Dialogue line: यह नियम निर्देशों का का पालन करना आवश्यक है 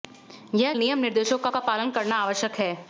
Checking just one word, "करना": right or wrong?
right